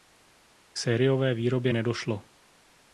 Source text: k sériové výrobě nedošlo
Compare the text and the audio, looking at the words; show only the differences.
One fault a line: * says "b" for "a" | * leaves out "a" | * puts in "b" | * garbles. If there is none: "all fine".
all fine